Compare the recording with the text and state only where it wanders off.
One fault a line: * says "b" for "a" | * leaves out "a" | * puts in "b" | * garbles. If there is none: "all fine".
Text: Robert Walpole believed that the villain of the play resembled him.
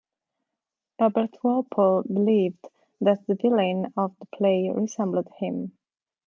all fine